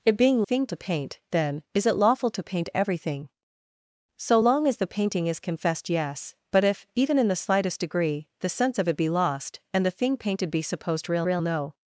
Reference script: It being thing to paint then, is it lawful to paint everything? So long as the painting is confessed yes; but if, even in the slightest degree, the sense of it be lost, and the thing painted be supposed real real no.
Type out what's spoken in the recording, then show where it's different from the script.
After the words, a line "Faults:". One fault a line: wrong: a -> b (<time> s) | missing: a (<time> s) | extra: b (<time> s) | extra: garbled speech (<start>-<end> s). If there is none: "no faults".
It being thing to paint then, is it lawful to paint everything? So long as the painting is confessed yes; but if, even in the slightest degree, the sense of it be lost, and the thing painted be supposed real real no.
Faults:
no faults